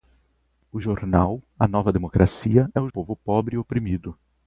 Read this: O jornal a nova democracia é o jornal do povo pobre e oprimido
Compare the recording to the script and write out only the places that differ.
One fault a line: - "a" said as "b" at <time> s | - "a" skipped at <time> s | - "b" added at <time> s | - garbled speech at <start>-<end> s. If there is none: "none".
- "jornal do" skipped at 2.9 s